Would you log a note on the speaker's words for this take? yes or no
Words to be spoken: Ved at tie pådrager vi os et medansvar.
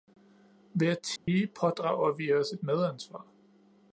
no